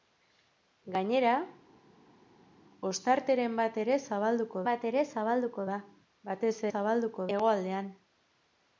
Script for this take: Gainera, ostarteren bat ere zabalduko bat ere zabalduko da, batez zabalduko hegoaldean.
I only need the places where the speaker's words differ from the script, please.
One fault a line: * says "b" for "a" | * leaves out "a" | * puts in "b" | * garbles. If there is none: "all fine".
all fine